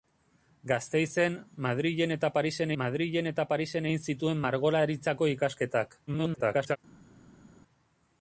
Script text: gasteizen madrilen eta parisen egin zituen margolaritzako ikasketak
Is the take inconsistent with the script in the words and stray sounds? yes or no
yes